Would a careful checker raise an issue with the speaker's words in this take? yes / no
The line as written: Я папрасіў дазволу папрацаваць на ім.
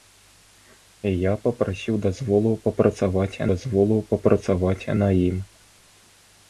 yes